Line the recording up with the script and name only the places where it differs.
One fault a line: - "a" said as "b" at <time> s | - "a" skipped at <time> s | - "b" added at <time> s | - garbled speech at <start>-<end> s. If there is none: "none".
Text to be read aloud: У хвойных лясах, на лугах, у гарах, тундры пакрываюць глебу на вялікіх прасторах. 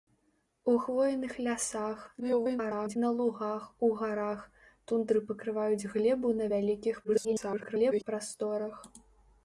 - garbled speech at 2.2-3.0 s
- garbled speech at 7.0-8.0 s